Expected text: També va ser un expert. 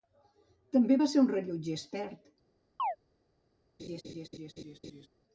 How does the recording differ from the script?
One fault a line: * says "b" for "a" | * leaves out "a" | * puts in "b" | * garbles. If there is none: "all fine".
* puts in "rellotger"